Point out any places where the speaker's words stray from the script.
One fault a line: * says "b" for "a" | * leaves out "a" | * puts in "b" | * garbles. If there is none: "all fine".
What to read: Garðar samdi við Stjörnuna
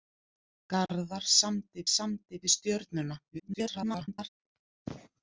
* puts in "samdi"
* garbles